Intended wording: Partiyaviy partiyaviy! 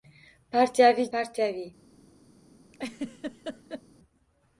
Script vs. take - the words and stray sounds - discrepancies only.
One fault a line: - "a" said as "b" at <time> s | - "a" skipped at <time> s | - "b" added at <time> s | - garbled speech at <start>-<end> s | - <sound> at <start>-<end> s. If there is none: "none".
- laugh at 2.7-3.8 s